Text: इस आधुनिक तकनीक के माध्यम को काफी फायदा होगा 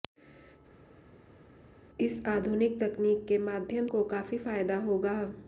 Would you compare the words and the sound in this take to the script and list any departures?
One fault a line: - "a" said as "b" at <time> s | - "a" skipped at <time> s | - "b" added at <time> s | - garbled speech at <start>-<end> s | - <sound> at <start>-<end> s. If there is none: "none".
none